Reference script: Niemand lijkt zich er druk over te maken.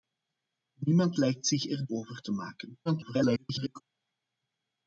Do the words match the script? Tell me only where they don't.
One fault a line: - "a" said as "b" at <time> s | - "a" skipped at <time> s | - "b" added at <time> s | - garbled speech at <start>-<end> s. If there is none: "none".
- "druk" skipped at 1.9 s
- garbled speech at 2.9-3.8 s